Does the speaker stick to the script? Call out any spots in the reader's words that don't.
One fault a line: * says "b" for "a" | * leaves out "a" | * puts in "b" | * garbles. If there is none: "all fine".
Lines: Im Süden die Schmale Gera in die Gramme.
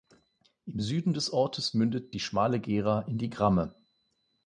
* puts in "des Ortes mündet"